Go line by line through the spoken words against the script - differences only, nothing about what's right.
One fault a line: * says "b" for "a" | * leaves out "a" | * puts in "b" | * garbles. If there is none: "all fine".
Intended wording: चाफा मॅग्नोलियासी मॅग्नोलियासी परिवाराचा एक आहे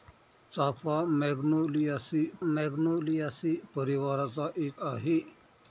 all fine